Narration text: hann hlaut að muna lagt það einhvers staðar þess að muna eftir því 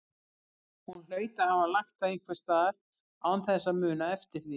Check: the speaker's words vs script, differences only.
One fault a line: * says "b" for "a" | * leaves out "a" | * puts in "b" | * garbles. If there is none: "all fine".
* says "hún" for "hann"
* says "hafa" for "muna"
* puts in "án"